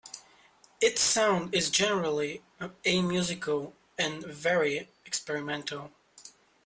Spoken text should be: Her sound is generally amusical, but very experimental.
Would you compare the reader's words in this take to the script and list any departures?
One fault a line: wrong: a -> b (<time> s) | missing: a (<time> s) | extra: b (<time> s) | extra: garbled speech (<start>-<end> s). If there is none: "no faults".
wrong: Her -> Its (0.8 s)
wrong: but -> and (4.0 s)